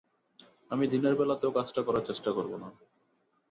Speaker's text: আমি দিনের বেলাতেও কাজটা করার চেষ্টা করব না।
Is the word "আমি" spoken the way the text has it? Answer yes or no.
yes